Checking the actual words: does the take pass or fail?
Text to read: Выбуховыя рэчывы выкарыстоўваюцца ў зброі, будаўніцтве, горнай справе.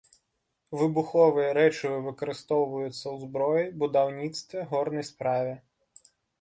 pass